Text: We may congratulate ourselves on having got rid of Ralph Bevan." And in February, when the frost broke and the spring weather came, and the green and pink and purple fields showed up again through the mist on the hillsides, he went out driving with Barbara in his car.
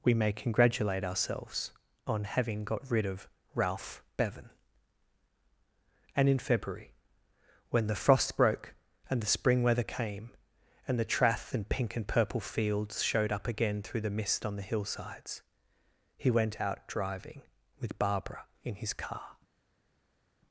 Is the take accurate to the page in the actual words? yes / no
no